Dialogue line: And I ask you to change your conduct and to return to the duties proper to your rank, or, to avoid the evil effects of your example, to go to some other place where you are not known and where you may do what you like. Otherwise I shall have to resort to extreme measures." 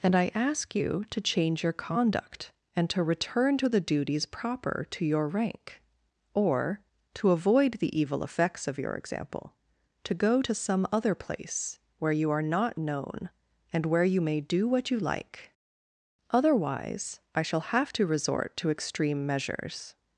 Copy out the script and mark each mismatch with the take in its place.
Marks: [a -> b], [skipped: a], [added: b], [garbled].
And I ask you to change your conduct and to return to the duties proper to your rank, or, to avoid the evil effects of your example, to go to some other place where you are not known and where you may do what you like. Otherwise I shall have to resort to extreme measures."